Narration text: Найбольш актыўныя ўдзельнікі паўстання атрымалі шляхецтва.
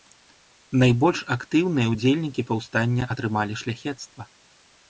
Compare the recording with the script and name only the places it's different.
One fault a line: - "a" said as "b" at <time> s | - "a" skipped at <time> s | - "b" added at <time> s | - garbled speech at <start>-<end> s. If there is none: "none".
none